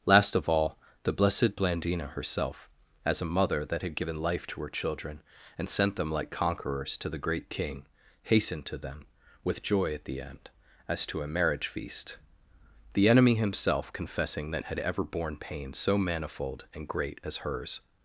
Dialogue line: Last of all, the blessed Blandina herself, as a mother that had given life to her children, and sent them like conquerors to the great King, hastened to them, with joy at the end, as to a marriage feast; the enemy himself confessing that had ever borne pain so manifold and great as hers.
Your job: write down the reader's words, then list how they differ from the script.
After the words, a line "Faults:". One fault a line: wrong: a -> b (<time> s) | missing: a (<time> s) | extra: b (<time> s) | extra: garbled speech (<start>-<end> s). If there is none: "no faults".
Last of all, the blessed Blandina herself, as a mother that had given life to her children, and sent them like conquerors to the great King, hastened to them, with joy at the end, as to a marriage feast; the enemy himself confessing that had ever borne pain so manifold and great as hers.
Faults:
no faults